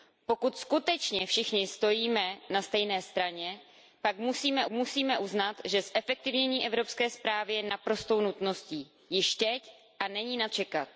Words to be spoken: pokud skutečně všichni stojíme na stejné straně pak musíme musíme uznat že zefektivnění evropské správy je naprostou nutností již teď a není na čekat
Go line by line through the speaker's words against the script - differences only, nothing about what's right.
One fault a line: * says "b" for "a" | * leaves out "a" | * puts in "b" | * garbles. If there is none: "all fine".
all fine